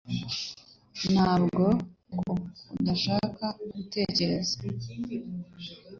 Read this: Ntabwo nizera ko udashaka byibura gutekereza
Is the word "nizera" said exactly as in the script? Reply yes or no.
no